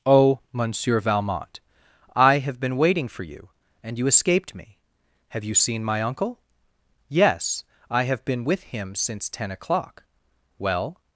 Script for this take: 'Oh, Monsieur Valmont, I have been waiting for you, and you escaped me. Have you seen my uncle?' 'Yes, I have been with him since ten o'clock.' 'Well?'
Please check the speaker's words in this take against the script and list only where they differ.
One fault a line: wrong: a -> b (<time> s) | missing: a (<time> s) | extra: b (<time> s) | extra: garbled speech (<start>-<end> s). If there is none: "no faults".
no faults